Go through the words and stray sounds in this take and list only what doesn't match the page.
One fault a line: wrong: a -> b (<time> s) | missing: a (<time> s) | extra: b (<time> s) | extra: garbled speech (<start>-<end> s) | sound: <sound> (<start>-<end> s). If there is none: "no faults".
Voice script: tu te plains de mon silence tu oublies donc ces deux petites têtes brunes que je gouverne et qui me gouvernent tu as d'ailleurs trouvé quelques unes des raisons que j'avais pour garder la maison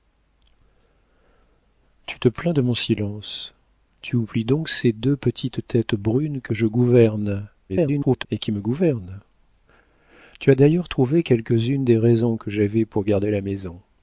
extra: garbled speech (7.7-8.3 s)